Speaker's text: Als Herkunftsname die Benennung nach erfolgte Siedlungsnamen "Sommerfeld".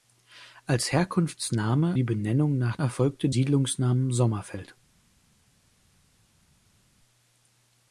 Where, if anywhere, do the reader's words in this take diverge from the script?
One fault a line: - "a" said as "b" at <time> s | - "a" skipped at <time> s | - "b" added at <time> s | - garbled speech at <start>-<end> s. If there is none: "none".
none